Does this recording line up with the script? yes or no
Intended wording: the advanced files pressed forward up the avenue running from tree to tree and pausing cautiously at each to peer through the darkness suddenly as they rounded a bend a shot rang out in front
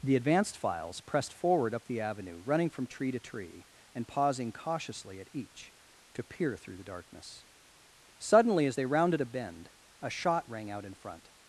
yes